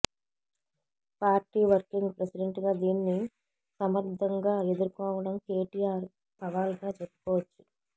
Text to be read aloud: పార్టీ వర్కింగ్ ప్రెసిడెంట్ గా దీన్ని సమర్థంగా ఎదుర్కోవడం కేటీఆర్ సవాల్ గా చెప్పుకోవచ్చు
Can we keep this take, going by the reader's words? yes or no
yes